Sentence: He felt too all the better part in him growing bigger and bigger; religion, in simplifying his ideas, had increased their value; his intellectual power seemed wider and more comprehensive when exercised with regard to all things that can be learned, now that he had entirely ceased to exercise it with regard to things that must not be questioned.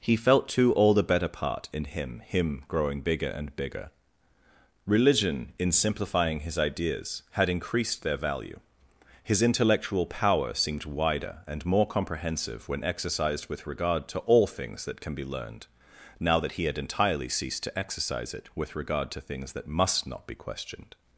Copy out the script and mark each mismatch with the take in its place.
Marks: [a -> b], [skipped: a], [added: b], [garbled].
He felt too all the better part in him [added: him] growing bigger and bigger; religion, in simplifying his ideas, had increased their value; his intellectual power seemed wider and more comprehensive when exercised with regard to all things that can be learned, now that he had entirely ceased to exercise it with regard to things that must not be questioned.